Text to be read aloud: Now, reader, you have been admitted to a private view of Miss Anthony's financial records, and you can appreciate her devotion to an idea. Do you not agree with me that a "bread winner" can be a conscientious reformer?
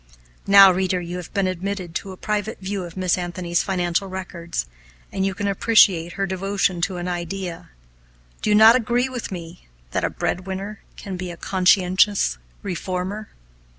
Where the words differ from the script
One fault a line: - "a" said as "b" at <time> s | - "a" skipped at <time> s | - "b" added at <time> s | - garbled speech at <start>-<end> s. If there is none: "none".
none